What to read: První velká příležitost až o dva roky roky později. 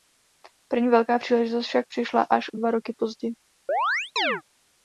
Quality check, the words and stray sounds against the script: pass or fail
fail